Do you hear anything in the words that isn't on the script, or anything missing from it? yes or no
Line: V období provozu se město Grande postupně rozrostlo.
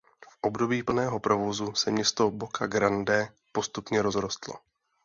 yes